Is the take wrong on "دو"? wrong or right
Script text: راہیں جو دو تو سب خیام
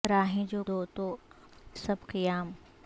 right